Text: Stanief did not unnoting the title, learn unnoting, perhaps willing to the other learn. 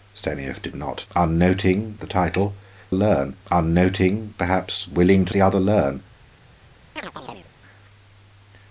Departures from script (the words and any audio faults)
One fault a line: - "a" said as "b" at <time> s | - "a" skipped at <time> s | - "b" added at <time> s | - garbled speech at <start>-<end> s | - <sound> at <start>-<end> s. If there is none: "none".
- chirp at 7.0-7.5 s